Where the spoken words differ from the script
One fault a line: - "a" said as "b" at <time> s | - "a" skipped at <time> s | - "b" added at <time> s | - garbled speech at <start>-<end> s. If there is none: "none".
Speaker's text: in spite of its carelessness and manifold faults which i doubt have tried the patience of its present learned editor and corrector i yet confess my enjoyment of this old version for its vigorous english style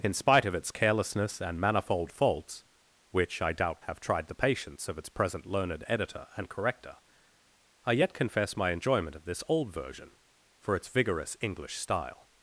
none